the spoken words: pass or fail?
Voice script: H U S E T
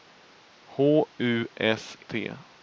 fail